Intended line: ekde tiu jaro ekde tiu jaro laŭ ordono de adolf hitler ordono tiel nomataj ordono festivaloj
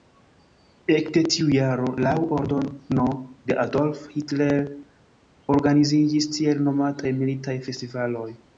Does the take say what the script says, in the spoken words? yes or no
no